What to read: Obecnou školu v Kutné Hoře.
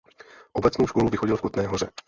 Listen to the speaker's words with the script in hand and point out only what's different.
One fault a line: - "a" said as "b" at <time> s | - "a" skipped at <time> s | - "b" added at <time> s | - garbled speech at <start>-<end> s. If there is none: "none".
- "vychodil" added at 1.1 s